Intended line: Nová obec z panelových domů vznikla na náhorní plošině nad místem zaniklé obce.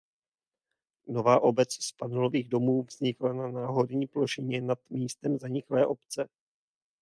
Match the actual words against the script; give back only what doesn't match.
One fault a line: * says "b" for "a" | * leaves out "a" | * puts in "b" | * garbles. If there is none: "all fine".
all fine